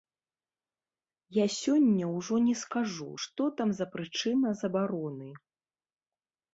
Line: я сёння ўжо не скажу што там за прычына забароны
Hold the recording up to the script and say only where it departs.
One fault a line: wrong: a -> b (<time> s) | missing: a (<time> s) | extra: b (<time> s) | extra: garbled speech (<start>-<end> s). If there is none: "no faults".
no faults